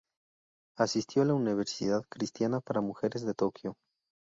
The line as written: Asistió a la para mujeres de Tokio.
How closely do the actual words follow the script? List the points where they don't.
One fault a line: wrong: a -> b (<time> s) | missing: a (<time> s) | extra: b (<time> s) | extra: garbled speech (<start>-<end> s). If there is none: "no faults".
extra: universidad cristiana (1.4 s)